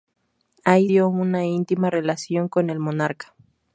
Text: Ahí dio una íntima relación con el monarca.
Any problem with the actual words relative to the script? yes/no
no